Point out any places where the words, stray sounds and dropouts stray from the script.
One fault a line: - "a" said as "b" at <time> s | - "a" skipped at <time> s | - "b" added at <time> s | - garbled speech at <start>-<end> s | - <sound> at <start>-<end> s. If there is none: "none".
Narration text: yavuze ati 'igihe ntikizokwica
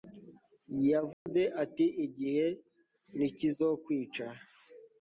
- dropout at 1.1-1.3 s